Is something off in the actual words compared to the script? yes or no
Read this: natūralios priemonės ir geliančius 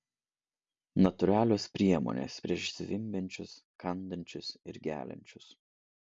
yes